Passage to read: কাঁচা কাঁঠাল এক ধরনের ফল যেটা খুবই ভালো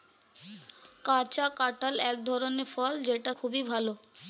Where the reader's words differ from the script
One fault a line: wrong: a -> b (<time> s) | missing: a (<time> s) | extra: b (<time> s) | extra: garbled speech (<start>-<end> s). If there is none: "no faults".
no faults